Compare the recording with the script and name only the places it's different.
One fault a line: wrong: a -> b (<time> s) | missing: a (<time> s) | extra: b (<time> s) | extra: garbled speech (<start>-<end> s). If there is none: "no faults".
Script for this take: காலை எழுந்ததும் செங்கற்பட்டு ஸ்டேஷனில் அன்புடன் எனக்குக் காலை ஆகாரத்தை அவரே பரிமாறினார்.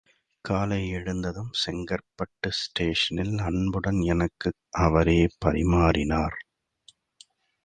missing: காலை ஆகாரத்தை (4.5 s)